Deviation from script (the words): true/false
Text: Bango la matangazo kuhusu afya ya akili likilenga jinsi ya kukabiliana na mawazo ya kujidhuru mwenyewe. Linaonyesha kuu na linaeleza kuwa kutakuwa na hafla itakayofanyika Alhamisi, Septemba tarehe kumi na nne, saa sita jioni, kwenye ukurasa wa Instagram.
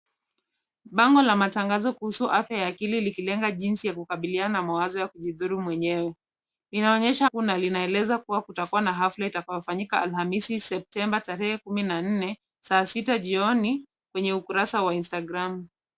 false